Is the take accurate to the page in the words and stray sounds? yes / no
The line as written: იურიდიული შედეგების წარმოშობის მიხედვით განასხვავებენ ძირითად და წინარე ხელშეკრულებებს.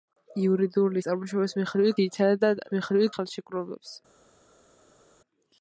no